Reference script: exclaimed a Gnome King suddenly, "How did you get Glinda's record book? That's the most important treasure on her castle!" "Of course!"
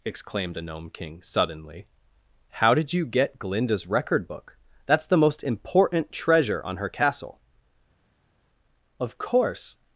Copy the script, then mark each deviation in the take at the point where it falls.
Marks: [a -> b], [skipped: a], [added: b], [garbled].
exclaimed a Gnome King suddenly, "How did you get Glinda's record book? That's the most important treasure on her castle!" "Of course!"